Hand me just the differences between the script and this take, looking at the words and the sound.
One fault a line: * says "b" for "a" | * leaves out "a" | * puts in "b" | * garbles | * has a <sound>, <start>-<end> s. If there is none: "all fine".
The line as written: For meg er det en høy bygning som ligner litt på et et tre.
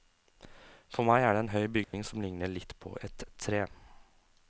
* has a dropout, 1.8-1.9 s
* leaves out "et"